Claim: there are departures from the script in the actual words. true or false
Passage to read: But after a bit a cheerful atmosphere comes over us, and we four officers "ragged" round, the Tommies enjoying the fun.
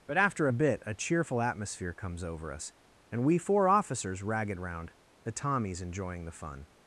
false